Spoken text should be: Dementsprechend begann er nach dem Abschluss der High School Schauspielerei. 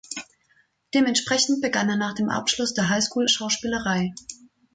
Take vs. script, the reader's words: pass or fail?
pass